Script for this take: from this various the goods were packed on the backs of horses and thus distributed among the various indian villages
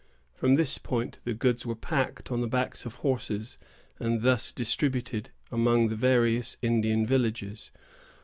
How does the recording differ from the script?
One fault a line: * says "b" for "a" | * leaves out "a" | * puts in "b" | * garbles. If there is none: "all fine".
* says "point" for "various"